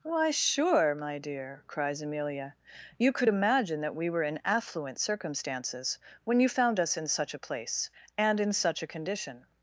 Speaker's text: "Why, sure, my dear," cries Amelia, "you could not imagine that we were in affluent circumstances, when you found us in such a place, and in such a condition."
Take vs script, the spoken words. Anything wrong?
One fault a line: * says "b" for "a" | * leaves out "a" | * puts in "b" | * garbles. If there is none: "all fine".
* leaves out "not"